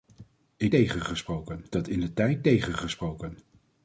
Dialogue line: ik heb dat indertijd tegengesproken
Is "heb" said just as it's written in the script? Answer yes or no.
no